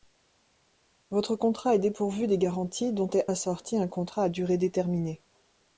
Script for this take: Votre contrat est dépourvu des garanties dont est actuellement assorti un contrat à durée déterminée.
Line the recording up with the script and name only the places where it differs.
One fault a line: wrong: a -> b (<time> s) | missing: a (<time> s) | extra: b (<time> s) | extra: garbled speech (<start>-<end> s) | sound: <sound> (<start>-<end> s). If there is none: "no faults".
missing: actuellement (3.3 s)